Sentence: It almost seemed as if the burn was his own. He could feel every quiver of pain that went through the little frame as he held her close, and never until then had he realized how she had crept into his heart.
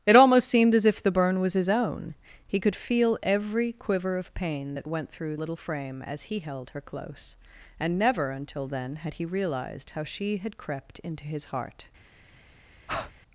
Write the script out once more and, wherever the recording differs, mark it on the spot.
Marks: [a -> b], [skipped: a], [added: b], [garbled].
It almost seemed as if the burn was his own. He could feel every quiver of pain that went through [skipped: the] little frame as he held her close, and never until then had he realized how she had crept into his heart.